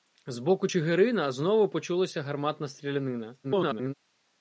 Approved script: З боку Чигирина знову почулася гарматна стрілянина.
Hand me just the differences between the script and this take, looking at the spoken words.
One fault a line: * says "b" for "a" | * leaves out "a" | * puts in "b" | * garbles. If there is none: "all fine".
* garbles